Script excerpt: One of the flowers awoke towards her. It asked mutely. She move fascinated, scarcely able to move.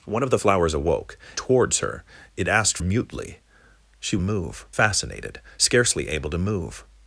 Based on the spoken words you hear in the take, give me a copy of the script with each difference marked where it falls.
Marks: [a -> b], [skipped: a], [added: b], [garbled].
One of the flowers awoke towards her. It asked mutely. She move fascinated, scarcely able to move.